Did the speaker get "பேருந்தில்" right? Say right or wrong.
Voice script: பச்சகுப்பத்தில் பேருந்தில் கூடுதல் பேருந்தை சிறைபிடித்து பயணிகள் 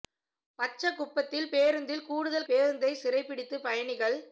right